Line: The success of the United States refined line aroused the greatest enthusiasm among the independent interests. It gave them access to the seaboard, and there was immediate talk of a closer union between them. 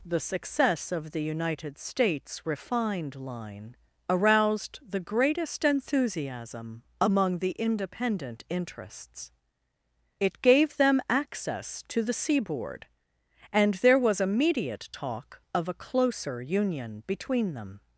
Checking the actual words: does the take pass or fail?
pass